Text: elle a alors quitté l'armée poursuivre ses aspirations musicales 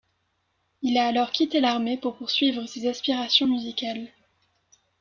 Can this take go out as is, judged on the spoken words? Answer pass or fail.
fail